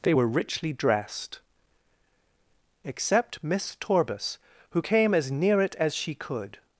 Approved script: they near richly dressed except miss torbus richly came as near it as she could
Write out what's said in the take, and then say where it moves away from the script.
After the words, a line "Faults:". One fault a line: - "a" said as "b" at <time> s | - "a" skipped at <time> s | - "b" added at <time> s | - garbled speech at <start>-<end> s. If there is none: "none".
they were richly dressed except miss torbus who came as near it as she could
Faults:
- "near" said as "were" at 0.1 s
- "richly" said as "who" at 4.7 s